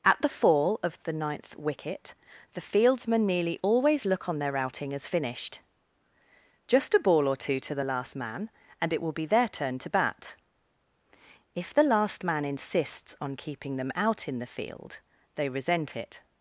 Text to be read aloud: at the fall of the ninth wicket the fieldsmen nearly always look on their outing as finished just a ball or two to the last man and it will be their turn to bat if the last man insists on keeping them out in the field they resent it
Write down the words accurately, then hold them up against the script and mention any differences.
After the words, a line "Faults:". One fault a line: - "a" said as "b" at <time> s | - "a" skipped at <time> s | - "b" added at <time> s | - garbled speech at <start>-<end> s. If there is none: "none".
at the fall of the ninth wicket the fieldsmen nearly always look on their outing as finished just a ball or two to the last man and it will be their turn to bat if the last man insists on keeping them out in the field they resent it
Faults:
none